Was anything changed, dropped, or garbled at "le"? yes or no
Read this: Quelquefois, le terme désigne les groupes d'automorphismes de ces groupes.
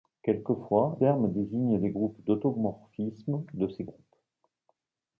yes